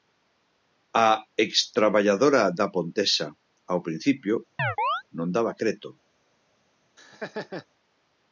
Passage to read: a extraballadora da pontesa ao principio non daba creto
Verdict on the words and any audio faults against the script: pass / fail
fail